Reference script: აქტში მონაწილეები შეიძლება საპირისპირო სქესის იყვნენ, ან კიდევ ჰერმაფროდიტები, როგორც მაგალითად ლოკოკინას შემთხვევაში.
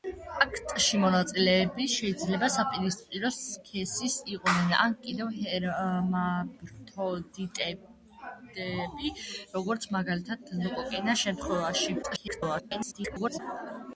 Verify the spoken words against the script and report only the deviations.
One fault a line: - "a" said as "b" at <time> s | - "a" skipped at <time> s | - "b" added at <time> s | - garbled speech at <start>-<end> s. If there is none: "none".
- garbled speech at 12.0-13.4 s